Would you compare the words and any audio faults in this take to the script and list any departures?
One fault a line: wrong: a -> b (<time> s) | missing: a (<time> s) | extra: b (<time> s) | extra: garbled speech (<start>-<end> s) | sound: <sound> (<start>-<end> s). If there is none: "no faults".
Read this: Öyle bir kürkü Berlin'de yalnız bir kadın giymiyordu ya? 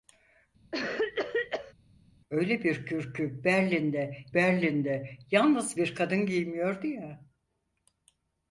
sound: cough (0.7-1.7 s)
extra: Berlin'de (4.3 s)